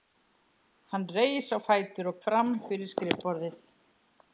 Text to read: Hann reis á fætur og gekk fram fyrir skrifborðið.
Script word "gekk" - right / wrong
wrong